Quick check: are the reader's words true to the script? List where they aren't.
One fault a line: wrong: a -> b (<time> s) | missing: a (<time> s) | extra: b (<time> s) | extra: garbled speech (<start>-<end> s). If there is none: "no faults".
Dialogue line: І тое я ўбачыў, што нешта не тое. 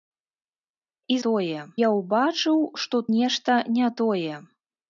no faults